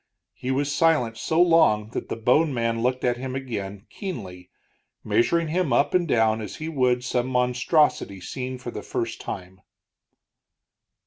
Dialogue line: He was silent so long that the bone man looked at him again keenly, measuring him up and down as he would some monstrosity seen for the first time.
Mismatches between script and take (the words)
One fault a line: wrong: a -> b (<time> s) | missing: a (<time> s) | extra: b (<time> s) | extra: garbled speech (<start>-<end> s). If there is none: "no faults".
no faults